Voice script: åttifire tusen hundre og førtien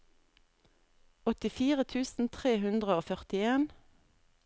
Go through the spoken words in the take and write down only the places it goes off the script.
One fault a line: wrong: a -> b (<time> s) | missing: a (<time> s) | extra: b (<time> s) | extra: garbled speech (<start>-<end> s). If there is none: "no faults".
extra: tre (2.4 s)